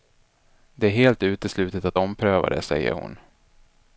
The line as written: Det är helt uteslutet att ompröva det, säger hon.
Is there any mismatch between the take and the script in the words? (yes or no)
no